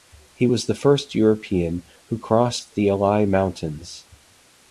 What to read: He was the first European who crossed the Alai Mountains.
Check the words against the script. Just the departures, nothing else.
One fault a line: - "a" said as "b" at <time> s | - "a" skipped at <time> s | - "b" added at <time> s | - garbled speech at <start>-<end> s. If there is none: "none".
none